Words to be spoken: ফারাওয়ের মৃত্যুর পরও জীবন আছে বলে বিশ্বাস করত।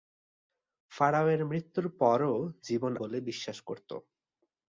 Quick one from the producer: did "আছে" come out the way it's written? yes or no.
no